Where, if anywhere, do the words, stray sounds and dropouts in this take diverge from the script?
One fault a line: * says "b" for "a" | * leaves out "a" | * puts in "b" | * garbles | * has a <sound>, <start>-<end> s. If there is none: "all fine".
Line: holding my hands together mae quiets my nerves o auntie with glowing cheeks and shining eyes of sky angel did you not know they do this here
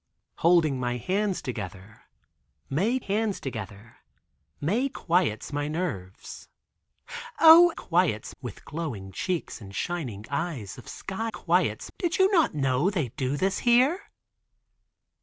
* puts in "hands together mae"
* says "quiets" for "auntie"
* says "quiets" for "angel"